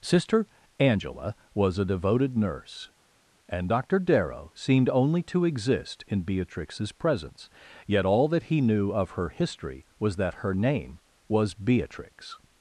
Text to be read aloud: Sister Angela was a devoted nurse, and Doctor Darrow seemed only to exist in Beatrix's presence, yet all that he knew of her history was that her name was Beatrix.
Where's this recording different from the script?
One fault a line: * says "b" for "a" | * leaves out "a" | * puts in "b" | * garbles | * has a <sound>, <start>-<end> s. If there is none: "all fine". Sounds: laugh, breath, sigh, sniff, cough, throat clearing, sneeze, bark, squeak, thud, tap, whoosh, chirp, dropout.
all fine